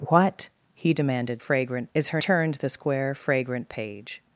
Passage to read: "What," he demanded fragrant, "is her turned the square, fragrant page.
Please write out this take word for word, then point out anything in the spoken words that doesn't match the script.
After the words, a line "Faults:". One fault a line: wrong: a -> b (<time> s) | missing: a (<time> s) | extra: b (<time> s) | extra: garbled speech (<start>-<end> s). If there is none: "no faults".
"What," he demanded fragrant, "is her turned the square, fragrant page.
Faults:
no faults